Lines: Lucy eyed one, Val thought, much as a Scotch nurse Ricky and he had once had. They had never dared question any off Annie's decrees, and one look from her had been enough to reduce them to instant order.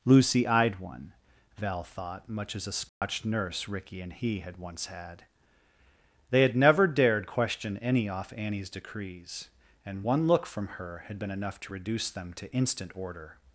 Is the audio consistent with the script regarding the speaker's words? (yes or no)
yes